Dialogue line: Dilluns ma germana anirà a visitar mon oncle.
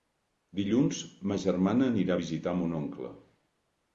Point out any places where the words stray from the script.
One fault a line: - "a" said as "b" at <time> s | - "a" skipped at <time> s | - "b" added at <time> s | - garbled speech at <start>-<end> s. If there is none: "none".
none